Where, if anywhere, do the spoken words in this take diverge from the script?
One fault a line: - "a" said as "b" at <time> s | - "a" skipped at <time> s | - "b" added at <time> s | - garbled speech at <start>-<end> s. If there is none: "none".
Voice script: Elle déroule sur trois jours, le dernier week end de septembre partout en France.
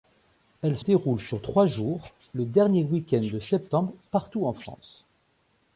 none